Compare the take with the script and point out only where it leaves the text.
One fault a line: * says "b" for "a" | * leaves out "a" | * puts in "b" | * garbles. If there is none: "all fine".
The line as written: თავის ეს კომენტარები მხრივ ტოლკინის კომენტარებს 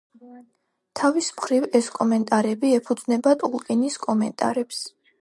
* puts in "მხრივ"
* says "ეფუძნება" for "მხრივ"